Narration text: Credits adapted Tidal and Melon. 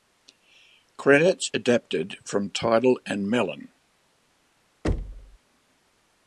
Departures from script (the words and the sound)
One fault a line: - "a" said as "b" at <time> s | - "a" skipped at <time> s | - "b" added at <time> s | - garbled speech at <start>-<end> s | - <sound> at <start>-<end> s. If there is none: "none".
- "from" added at 2.2 s
- thud at 4.8-5.4 s